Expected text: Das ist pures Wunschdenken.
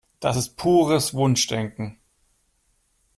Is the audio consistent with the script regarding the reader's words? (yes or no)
yes